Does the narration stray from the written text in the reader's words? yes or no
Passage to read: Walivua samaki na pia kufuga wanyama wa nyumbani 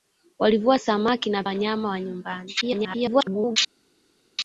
yes